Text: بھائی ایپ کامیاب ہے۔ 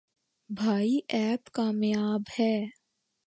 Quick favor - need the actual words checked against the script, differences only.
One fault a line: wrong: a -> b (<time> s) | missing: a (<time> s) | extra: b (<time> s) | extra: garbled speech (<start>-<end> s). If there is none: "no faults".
no faults